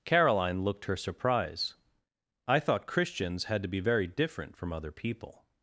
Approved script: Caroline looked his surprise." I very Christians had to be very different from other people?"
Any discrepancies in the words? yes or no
yes